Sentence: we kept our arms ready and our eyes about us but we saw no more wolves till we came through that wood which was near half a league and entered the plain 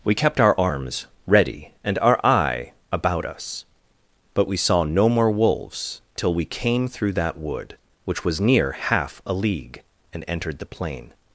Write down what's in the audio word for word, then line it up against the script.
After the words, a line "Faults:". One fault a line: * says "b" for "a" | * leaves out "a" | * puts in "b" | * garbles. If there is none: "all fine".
we kept our arms ready and our eye about us but we saw no more wolves till we came through that wood which was near half a league and entered the plain
Faults:
* says "eye" for "eyes"